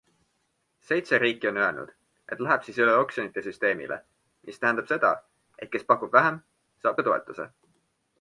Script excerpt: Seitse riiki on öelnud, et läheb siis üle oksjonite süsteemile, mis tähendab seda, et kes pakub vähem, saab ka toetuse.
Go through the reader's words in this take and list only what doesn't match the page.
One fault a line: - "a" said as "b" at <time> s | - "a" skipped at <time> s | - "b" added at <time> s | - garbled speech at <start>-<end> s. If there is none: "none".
none